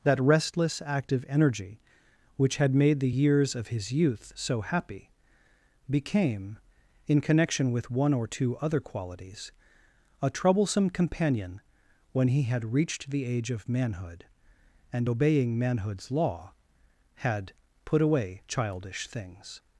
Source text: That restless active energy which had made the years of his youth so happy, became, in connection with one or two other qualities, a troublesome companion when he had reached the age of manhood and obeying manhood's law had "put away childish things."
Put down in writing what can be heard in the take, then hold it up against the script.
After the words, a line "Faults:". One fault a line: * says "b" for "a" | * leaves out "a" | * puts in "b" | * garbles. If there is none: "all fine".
That restless active energy which had made the years of his youth so happy, became, in connection with one or two other qualities, a troublesome companion when he had reached the age of manhood and obeying manhood's law had "put away childish things."
Faults:
all fine